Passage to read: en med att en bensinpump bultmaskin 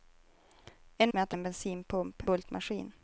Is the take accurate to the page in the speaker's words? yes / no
yes